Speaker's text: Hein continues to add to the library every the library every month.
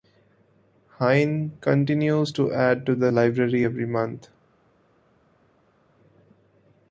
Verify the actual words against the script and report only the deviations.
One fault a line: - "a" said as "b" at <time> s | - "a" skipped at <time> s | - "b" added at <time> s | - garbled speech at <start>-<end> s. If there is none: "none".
- "the library every" skipped at 3.9 s